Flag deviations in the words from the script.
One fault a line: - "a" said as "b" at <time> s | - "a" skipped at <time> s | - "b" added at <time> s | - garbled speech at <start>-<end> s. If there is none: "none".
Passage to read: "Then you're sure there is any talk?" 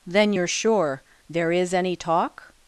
none